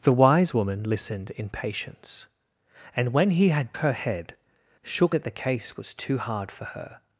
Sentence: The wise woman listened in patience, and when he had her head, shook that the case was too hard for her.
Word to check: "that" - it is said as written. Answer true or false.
true